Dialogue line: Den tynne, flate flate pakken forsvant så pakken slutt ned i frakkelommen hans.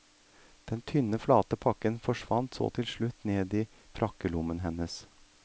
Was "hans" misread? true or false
true